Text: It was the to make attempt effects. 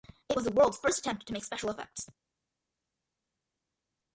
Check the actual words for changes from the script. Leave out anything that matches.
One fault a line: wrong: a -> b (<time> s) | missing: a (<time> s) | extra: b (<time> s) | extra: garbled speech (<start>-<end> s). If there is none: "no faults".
extra: world's first attempt (0.5 s)
wrong: attempt -> special (1.4 s)